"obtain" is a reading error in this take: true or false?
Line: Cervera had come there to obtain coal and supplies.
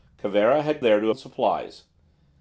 true